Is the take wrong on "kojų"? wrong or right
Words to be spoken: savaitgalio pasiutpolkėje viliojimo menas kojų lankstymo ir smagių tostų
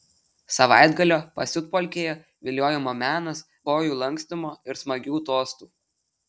right